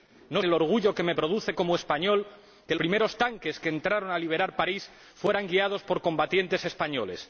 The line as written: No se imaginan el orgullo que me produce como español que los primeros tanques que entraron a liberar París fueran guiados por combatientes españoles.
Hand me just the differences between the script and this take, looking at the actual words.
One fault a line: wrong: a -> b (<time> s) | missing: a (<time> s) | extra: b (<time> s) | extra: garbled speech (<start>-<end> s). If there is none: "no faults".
missing: se imaginan (0.4 s)
missing: los (2.8 s)